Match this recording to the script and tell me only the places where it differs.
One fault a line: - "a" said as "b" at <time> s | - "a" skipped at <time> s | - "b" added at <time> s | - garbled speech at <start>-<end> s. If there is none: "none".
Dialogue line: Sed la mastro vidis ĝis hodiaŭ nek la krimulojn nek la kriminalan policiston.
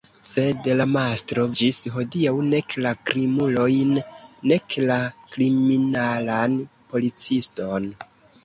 - "vidis" skipped at 1.4 s